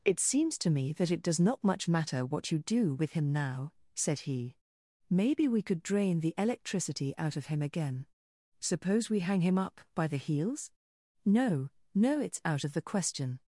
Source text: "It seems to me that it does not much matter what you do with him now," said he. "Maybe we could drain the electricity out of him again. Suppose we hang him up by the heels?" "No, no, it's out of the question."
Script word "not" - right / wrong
right